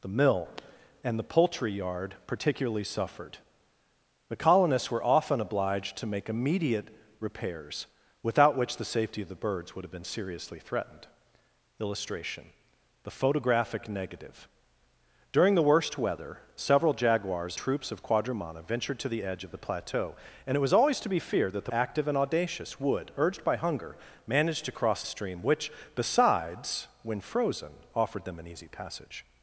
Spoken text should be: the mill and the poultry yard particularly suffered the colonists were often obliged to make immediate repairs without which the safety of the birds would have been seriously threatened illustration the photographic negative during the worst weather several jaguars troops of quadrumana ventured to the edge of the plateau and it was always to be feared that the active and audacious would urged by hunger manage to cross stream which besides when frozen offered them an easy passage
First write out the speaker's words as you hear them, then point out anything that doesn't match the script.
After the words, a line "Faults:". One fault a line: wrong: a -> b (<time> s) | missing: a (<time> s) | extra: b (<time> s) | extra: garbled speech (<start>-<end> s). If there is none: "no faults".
the mill and the poultry yard particularly suffered the colonists were often obliged to make immediate repairs without which the safety of the birds would have been seriously threatened illustration the photographic negative during the worst weather several jaguars troops of quadrumana ventured to the edge of the plateau and it was always to be feared that the active and audacious would urged by hunger manage to cross stream which besides when frozen offered them an easy passage
Faults:
no faults